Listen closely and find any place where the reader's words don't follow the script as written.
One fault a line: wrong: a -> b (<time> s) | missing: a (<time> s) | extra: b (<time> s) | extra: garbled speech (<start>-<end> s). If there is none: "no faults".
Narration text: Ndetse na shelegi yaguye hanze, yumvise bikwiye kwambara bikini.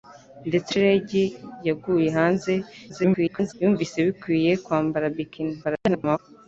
missing: na (0.7 s)
extra: garbled speech (2.9-3.5 s)
extra: garbled speech (5.6-6.2 s)